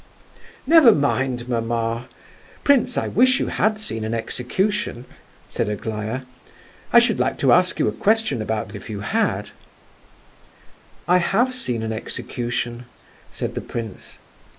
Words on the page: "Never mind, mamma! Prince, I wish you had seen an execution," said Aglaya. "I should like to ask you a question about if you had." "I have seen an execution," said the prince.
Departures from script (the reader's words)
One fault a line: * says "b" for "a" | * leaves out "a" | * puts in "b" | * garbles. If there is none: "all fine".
all fine